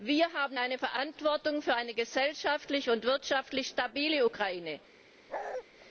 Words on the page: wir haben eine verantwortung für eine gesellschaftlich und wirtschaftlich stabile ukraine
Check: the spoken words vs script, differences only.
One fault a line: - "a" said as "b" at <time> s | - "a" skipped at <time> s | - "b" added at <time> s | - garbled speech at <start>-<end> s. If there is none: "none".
none